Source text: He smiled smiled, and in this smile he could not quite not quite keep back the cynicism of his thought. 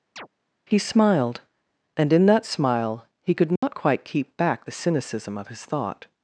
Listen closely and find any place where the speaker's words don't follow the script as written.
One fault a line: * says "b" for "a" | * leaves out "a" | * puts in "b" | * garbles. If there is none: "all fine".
* leaves out "smiled"
* says "that" for "this"
* leaves out "not quite"